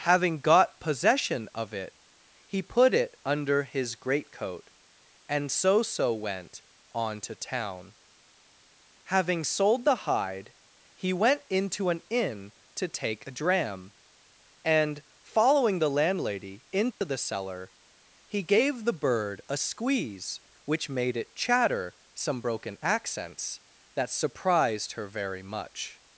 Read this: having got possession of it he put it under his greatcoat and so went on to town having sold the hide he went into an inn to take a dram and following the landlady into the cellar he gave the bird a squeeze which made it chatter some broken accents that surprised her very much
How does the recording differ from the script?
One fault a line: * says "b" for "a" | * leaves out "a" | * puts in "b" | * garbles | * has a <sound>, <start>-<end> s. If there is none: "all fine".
* puts in "so"
* has a dropout, 16.9-17.0 s